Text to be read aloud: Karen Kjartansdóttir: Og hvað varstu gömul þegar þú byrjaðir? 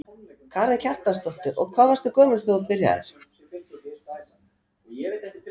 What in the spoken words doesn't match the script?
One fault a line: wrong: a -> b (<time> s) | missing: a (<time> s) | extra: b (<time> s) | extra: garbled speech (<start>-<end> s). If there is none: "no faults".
no faults